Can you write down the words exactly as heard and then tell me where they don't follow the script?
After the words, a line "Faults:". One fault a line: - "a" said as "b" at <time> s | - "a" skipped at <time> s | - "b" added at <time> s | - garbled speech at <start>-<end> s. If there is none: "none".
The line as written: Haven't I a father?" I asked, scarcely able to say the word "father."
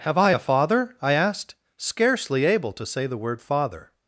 Have I a father?" I asked, scarcely able to say the word "father."
Faults:
- "Haven't" said as "Have" at 0.0 s